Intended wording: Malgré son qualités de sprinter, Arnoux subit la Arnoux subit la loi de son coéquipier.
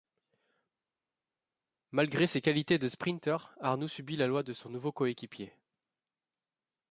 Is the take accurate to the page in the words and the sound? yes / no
no